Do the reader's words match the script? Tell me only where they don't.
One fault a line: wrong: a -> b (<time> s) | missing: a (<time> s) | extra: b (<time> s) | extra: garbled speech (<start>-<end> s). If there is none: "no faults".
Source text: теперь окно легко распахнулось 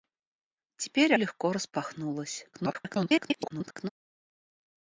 missing: окно (1.1 s)
extra: garbled speech (2.5-3.9 s)